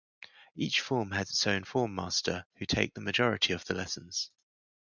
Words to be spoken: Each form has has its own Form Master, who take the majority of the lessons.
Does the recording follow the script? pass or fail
fail